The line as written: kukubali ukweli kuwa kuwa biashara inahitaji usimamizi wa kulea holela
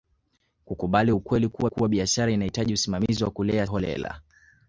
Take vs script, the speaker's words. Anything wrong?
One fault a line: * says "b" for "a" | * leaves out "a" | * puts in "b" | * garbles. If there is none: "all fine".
all fine